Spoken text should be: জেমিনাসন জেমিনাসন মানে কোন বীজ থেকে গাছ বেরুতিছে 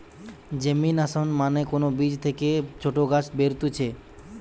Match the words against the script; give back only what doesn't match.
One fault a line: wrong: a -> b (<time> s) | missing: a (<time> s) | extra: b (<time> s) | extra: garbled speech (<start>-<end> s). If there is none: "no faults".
missing: জেমিনাসন (1.3 s)
extra: ছোট (2.8 s)